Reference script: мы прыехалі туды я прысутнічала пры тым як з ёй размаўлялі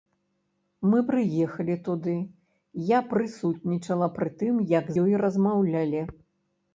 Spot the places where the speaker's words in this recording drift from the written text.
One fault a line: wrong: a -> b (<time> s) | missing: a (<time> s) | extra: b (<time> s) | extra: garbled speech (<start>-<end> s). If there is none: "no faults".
missing: з (4.8 s)